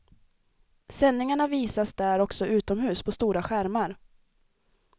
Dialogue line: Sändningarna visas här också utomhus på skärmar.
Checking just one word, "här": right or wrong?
wrong